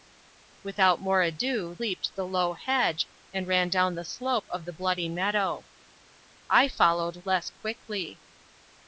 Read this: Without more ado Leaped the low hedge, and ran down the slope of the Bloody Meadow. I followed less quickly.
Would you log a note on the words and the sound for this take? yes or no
no